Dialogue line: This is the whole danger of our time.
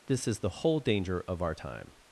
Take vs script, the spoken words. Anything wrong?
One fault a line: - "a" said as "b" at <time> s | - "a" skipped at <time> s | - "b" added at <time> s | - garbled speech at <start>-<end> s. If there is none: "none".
none